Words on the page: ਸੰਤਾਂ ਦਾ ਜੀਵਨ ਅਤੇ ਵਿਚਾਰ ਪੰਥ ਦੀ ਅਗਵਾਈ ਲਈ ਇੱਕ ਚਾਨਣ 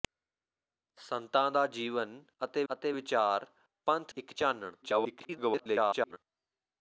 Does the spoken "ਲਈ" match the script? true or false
false